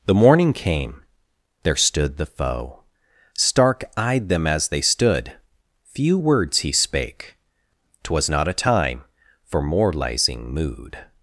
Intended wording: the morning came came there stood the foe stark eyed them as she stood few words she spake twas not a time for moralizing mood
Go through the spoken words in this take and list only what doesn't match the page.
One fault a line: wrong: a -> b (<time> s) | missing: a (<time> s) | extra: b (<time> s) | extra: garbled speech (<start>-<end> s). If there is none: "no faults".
missing: came (1.0 s)
wrong: she -> they (4.7 s)
wrong: she -> he (6.6 s)